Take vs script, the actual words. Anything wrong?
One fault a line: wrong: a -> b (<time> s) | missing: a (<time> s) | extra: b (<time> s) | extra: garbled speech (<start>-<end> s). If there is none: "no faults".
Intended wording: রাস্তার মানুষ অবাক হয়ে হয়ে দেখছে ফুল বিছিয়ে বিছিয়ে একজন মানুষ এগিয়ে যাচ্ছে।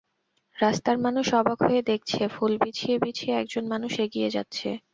missing: হয়ে (1.8 s)